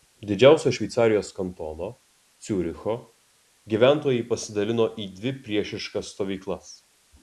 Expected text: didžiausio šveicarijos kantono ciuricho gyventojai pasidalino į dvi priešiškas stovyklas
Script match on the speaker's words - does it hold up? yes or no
yes